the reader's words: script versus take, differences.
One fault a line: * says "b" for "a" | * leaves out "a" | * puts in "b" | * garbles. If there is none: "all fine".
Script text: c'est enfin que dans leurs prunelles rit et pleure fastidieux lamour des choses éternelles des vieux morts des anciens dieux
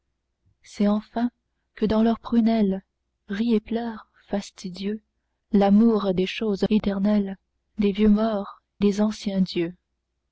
all fine